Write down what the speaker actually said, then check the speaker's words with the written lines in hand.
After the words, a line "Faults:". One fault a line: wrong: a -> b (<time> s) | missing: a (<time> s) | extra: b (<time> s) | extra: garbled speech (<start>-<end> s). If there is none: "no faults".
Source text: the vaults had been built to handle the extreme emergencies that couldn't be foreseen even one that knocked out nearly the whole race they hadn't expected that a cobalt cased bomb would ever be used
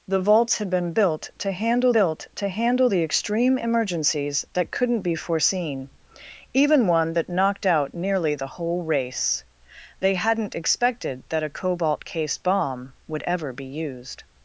the vaults had been built to handle built to handle the extreme emergencies that couldn't be foreseen even one that knocked out nearly the whole race they hadn't expected that a cobalt cased bomb would ever be used
Faults:
extra: built to handle (1.9 s)